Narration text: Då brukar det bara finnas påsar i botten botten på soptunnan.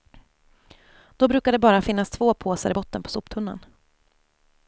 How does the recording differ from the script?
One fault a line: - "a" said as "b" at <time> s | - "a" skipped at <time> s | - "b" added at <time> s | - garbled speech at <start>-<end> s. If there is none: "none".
- "två" added at 2.1 s
- "botten" skipped at 3.0 s